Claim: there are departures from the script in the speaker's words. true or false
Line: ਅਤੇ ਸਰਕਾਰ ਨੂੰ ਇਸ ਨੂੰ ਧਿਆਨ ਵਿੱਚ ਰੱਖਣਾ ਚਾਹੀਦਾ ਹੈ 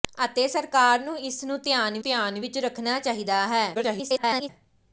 true